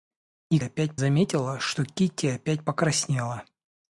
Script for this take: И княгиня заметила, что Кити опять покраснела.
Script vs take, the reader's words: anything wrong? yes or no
yes